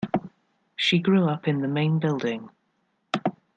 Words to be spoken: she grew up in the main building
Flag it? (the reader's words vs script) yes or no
no